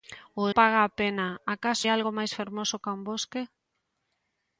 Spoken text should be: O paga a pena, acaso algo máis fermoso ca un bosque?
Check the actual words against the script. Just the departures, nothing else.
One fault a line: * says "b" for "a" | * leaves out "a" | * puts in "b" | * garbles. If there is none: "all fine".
all fine